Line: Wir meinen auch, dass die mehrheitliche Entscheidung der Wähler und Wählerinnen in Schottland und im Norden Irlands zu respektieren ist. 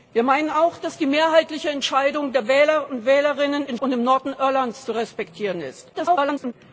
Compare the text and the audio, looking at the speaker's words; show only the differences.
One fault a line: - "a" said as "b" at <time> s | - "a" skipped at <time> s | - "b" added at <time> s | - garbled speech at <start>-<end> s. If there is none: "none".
- "Schottland" skipped at 3.8 s
- garbled speech at 5.9-6.5 s